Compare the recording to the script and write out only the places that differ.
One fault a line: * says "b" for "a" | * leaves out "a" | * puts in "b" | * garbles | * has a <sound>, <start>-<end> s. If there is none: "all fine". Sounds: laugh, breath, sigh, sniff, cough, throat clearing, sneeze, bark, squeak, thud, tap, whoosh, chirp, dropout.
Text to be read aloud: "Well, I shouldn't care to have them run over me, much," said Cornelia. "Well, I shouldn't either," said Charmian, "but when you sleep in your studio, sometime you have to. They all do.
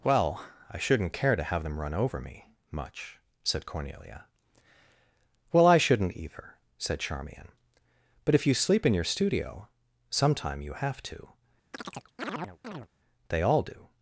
* says "if" for "when"
* has a chirp, 11.7-12.9 s